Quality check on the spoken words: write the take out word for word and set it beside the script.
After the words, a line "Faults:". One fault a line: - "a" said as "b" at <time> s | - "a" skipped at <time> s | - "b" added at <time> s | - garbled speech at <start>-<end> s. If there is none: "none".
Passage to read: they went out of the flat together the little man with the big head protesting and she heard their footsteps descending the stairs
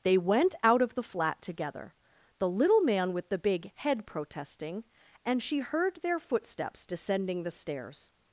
they went out of the flat together the little man with the big head protesting and she heard their footsteps descending the stairs
Faults:
none